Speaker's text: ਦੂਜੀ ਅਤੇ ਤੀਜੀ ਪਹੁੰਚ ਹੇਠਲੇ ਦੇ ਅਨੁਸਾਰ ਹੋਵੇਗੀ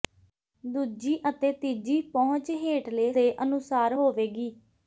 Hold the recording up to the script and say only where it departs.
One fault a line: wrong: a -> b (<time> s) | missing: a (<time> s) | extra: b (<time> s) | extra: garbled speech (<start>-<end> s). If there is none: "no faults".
no faults